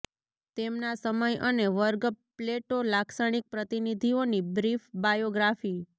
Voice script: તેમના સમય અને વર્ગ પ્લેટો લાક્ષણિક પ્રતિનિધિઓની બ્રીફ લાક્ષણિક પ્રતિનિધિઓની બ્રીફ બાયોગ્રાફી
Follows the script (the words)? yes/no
no